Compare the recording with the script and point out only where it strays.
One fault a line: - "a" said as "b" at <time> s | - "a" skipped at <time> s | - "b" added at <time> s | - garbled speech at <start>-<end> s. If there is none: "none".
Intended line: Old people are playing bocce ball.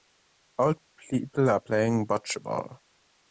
none